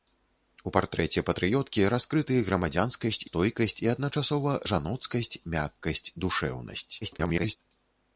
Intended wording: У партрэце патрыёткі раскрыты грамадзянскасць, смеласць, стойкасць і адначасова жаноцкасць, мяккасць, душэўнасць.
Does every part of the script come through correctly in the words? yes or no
no